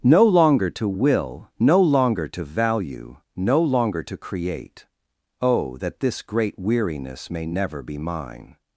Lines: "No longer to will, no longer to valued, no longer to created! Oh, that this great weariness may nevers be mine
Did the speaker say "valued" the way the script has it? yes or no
no